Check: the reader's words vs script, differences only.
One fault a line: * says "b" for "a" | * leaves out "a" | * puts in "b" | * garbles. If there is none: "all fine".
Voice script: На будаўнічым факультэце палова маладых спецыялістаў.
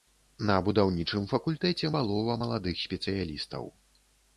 all fine